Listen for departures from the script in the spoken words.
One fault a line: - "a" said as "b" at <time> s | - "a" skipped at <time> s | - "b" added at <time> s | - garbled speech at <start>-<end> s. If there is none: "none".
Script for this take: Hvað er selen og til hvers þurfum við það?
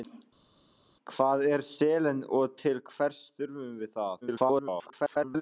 - garbled speech at 4.2-5.4 s